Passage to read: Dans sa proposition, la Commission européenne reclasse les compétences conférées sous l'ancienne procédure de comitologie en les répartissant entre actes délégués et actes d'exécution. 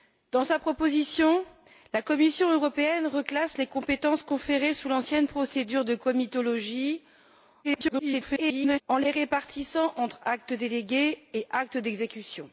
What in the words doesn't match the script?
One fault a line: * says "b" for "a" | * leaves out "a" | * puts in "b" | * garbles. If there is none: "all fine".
* garbles